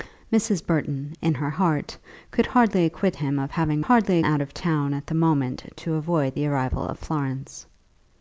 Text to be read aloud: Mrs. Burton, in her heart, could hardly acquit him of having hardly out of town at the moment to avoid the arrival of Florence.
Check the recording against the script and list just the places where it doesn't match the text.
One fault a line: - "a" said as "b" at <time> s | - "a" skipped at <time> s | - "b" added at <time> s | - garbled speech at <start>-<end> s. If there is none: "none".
none